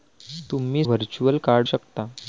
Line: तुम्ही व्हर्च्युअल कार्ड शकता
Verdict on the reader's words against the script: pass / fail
pass